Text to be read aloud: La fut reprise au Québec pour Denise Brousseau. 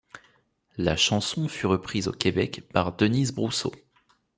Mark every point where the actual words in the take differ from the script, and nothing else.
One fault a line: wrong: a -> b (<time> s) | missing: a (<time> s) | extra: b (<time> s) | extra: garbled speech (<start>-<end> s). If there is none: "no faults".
extra: chanson (1.0 s)
wrong: pour -> par (2.7 s)